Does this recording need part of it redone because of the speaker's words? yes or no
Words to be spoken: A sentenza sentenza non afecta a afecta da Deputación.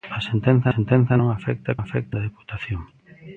no